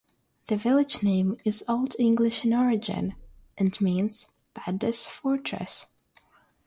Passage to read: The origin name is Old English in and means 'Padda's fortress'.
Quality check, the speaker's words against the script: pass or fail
fail